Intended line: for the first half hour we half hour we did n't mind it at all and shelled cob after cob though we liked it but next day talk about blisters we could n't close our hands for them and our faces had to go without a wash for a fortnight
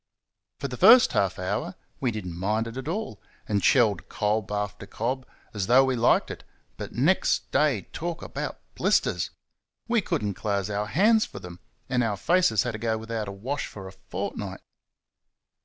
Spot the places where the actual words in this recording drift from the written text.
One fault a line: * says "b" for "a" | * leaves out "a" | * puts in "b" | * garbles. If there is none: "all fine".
* leaves out "half hour we"
* puts in "as"